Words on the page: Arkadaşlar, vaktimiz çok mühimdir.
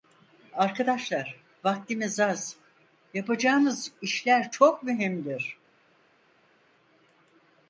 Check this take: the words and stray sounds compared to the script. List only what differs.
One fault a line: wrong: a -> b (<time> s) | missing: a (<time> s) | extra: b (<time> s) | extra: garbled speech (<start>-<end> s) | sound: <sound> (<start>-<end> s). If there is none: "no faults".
extra: az yapacağımız işler (2.2 s)